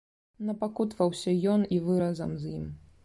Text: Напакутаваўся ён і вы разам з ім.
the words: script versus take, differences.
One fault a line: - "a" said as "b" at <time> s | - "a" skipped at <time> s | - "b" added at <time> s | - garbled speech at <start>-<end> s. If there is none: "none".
none